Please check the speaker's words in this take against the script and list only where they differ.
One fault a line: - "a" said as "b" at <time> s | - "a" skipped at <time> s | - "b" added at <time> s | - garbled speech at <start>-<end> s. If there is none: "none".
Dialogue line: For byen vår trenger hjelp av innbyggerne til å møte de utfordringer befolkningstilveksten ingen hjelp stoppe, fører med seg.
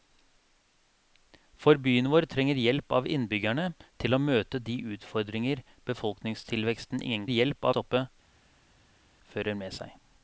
none